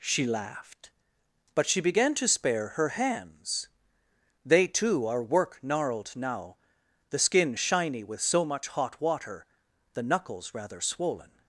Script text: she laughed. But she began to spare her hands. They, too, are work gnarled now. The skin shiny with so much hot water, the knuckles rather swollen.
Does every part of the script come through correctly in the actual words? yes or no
yes